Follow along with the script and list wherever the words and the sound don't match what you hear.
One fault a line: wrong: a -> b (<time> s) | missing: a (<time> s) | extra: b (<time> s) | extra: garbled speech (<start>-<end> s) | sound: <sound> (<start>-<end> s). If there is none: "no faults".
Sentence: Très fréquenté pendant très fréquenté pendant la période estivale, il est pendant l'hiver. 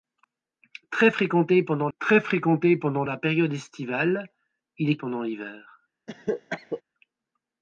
sound: cough (6.1-6.8 s)